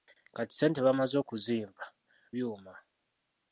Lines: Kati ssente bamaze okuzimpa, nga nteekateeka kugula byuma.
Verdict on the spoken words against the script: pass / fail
fail